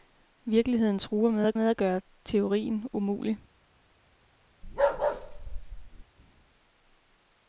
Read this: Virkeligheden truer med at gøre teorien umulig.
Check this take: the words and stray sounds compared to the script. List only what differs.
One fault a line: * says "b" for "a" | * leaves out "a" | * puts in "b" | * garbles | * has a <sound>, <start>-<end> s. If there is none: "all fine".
* puts in "med at"
* has a bark, 4.6-6.0 s